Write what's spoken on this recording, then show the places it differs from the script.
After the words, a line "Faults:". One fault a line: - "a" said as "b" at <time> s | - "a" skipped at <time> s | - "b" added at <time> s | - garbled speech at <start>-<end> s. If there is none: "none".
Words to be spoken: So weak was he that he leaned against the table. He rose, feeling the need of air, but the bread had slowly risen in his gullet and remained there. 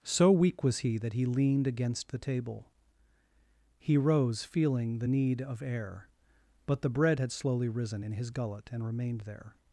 So weak was he that he leaned against the table. He rose, feeling the need of air, but the bread had slowly risen in his gullet and remained there.
Faults:
none